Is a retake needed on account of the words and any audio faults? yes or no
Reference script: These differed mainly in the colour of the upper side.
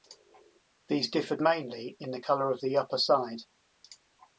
no